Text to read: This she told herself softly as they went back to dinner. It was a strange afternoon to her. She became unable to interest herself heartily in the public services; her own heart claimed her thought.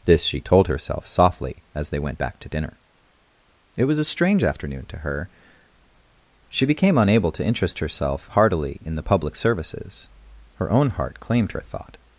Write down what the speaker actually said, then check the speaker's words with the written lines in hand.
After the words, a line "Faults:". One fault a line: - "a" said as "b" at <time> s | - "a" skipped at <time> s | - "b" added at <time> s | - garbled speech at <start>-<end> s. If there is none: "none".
This she told herself softly as they went back to dinner. It was a strange afternoon to her. She became unable to interest herself heartily in the public services; her own heart claimed her thought.
Faults:
none